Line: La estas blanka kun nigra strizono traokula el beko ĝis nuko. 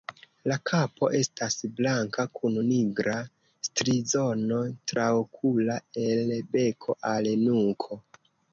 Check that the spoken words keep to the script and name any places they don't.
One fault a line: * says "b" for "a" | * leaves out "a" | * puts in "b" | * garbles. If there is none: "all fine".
* puts in "kapo"
* says "al" for "ĝis"